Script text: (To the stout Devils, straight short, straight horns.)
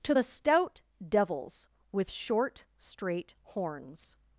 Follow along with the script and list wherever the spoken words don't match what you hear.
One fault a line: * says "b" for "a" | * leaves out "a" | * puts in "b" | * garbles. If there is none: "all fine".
* says "with" for "straight"